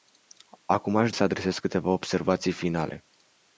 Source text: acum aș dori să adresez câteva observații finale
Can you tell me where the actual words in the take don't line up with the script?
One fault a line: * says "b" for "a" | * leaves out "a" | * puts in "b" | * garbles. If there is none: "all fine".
* leaves out "dori"